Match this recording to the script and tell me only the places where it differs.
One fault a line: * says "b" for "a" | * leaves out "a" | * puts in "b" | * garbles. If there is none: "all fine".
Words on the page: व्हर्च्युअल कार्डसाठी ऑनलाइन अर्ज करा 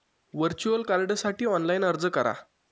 all fine